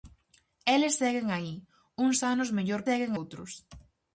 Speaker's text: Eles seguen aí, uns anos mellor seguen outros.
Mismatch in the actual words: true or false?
false